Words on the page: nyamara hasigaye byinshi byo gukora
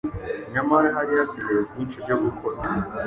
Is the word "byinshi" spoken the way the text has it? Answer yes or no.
yes